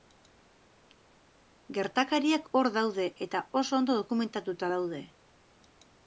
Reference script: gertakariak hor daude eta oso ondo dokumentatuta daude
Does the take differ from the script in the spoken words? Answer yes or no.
no